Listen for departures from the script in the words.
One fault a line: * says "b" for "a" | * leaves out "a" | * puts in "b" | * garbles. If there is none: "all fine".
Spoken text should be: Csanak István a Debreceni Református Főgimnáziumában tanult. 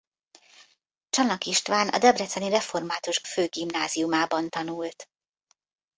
all fine